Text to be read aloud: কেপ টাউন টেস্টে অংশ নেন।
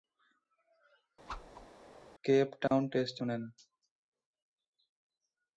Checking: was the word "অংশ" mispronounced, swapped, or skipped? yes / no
yes